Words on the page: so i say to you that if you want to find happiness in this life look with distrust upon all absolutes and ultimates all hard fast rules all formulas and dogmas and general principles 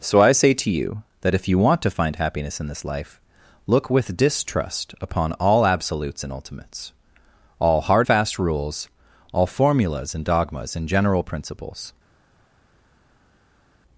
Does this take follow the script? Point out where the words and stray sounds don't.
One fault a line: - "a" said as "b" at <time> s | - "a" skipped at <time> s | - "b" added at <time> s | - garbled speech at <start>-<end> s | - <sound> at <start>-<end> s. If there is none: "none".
none